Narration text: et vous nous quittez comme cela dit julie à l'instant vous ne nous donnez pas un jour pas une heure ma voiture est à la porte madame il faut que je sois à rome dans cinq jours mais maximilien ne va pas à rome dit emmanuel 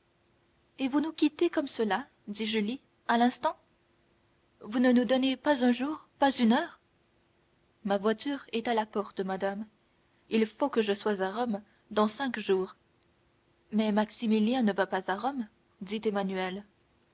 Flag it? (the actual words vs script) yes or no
no